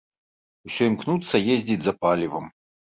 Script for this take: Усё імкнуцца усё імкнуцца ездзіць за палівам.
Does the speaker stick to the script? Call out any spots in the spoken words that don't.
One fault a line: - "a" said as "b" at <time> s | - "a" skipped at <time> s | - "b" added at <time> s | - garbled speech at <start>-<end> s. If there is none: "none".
- "усё імкнуцца" skipped at 1.4 s